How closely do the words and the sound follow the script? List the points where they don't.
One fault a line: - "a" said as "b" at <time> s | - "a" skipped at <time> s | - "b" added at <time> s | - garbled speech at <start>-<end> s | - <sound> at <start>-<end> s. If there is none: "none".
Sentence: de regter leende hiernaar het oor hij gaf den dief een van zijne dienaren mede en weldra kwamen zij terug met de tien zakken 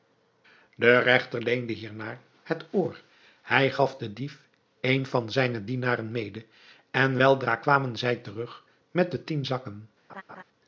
- laugh at 10.1-10.4 s